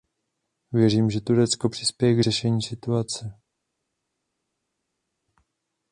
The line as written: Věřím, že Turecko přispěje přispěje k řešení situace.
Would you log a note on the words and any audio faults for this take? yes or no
yes